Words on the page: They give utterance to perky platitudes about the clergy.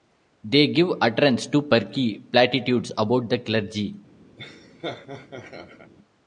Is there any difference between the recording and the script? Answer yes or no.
no